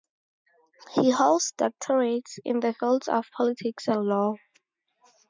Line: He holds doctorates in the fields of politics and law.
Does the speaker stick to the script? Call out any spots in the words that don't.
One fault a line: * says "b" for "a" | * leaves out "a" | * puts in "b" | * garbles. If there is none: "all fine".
all fine